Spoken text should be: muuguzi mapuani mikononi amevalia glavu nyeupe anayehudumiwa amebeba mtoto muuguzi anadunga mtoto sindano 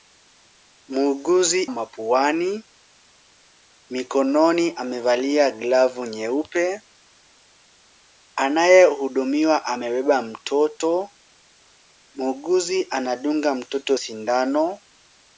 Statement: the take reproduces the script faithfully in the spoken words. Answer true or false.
true